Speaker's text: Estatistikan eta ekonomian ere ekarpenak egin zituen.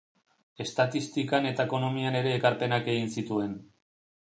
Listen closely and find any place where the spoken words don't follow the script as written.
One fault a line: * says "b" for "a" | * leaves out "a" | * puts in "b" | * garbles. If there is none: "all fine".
all fine